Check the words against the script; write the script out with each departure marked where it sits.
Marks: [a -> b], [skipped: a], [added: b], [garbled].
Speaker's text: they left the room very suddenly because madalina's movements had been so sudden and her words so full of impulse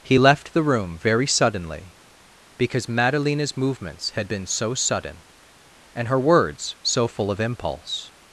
[they -> he] left the room very suddenly because madalina's movements had been so sudden and her words so full of impulse